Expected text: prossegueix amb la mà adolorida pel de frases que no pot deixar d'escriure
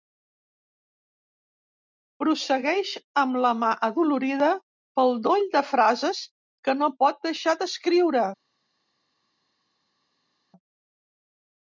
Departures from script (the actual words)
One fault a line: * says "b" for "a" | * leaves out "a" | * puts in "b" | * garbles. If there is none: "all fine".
* puts in "doll"